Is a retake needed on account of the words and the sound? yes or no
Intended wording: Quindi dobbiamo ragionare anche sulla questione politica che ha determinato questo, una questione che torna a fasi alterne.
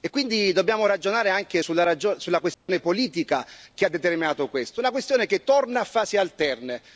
yes